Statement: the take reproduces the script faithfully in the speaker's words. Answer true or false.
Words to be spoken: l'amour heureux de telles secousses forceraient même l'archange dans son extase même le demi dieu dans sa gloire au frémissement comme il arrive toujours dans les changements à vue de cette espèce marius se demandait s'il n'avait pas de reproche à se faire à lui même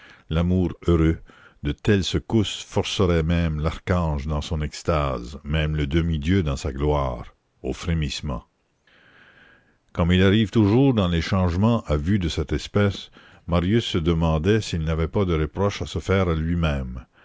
true